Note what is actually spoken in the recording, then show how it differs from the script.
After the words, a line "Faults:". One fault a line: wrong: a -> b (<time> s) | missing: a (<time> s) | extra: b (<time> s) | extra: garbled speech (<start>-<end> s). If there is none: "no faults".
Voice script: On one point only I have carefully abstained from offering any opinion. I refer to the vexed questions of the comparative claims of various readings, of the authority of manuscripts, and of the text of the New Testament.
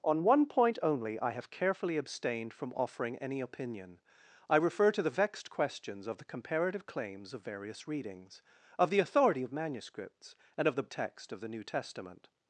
On one point only I have carefully abstained from offering any opinion. I refer to the vexed questions of the comparative claims of various readings, of the authority of manuscripts, and of the text of the New Testament.
Faults:
no faults